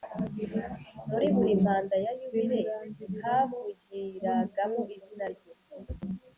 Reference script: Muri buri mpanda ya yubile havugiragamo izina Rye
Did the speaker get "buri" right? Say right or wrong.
right